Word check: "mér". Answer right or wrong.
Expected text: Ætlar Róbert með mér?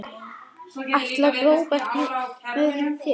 wrong